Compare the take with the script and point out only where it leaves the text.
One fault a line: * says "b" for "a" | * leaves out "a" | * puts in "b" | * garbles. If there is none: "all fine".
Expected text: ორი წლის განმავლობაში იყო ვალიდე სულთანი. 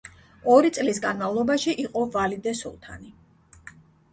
all fine